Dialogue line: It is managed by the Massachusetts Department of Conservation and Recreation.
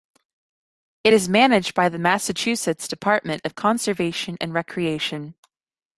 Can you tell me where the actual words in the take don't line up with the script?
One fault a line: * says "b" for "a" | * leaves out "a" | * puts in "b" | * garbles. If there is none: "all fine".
all fine